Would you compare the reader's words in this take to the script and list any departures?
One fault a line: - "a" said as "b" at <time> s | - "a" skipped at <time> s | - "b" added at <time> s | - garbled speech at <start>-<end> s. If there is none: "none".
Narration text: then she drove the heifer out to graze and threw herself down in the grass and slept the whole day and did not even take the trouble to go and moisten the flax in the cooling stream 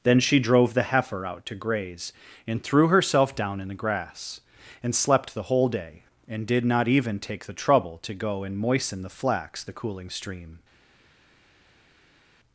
- "in" skipped at 9.6 s